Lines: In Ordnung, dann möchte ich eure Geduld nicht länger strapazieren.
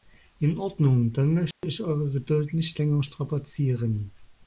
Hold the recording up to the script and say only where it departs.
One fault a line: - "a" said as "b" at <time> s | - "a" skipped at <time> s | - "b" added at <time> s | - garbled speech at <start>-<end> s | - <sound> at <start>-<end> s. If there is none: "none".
- dropout at 1.5-1.6 s